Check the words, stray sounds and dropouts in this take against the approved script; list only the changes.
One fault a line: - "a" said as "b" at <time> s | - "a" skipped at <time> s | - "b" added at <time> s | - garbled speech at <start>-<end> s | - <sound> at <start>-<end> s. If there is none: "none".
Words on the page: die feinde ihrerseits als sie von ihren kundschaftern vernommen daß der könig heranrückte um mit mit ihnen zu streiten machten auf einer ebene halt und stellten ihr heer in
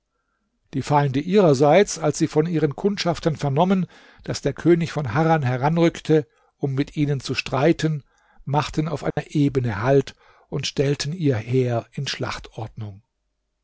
- "von harran" added at 4.9 s
- "mit" skipped at 7.0 s
- dropout at 9.1-9.2 s